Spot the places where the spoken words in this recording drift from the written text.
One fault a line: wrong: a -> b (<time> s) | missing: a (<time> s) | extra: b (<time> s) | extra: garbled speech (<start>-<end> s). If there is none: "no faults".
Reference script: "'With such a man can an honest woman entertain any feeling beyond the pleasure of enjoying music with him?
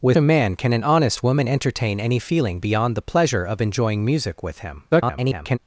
missing: such (0.2 s)
extra: garbled speech (4.9-5.6 s)